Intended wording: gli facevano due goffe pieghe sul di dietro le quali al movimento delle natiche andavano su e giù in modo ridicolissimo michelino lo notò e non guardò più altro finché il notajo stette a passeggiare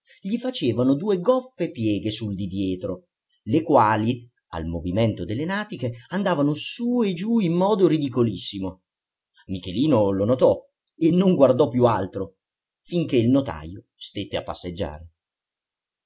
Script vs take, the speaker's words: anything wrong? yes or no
no